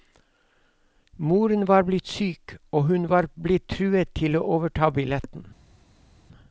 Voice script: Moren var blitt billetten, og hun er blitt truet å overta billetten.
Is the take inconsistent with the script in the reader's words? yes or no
yes